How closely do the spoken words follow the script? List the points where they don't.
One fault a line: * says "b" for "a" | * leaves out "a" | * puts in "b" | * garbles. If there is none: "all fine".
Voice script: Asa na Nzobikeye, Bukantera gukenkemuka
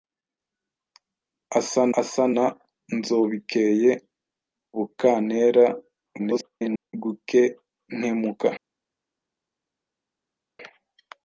* puts in "asa"
* garbles